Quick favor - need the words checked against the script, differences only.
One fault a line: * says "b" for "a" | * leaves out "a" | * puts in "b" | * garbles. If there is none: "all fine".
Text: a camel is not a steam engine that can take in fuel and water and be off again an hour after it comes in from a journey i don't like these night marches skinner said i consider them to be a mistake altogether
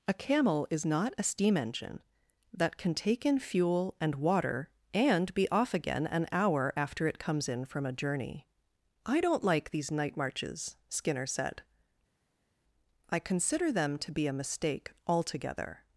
all fine